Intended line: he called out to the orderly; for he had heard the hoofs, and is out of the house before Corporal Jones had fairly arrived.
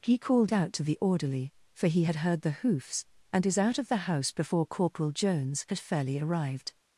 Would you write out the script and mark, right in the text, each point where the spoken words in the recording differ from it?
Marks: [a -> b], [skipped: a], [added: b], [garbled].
he called out to the orderly; for he had heard the hoofs, and is out of the house before Corporal Jones had fairly arrived.